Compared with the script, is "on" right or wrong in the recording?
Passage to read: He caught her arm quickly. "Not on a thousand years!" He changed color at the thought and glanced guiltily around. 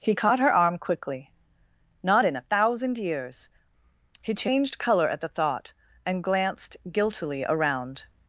wrong